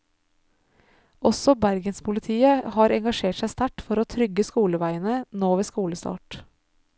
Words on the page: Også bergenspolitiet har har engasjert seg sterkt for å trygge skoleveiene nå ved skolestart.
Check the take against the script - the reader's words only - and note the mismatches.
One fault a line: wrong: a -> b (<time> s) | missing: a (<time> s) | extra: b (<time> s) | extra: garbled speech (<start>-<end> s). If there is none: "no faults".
missing: har (3.0 s)